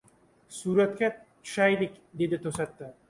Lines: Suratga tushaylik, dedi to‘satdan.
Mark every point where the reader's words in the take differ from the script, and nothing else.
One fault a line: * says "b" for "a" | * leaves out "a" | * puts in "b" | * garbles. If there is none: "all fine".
all fine